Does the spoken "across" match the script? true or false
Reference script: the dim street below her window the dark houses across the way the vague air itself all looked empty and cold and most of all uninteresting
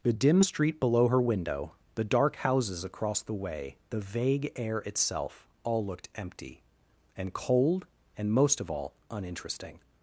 true